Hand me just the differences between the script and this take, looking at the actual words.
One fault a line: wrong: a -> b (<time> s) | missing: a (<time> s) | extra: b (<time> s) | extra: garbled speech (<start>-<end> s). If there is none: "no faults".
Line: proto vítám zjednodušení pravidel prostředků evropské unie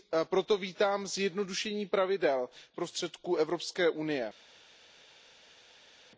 no faults